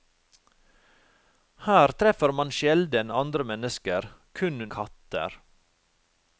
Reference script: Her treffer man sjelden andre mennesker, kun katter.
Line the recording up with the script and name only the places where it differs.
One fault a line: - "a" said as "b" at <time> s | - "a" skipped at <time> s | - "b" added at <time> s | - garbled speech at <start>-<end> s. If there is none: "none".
none